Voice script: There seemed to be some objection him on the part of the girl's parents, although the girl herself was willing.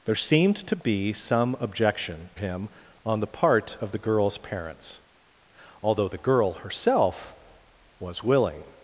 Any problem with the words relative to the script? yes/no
no